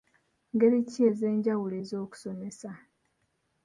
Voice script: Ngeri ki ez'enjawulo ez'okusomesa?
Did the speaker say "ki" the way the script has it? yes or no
yes